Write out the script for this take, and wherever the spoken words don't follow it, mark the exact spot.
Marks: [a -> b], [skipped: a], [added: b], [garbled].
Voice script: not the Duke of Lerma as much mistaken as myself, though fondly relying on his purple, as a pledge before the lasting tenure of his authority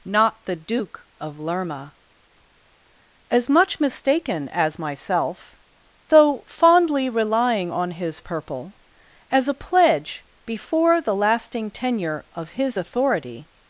not the Duke of Lerma as much mistaken as myself, though fondly relying on his purple, as a pledge before the lasting tenure of his authority